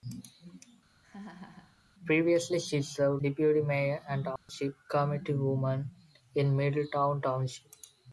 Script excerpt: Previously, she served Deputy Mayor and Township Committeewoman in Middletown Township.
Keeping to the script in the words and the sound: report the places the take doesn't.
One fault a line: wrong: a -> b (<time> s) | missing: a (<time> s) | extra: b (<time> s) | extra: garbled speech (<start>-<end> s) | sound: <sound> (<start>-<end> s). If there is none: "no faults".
sound: laugh (1.0-1.8 s)
sound: dropout (4.4-4.5 s)